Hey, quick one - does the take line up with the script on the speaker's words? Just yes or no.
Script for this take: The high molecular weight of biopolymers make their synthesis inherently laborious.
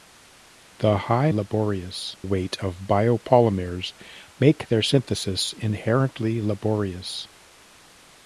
no